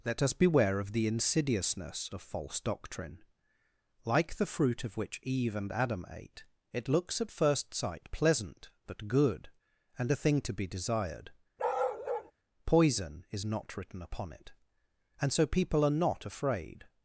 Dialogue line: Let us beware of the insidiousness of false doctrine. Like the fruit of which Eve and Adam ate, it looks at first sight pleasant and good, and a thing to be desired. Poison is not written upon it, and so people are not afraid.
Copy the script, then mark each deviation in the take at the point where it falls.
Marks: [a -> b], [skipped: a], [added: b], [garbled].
Let us beware of the insidiousness of false doctrine. Like the fruit of which Eve and Adam ate, it looks at first sight pleasant [and -> but] good, and a thing to be desired. Poison is not written upon it, and so people are not afraid.